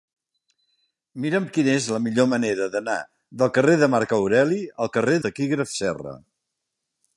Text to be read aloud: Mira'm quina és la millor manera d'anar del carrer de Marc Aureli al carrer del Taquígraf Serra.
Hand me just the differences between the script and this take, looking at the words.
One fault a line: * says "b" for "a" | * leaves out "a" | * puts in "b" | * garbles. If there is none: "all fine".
* leaves out "del"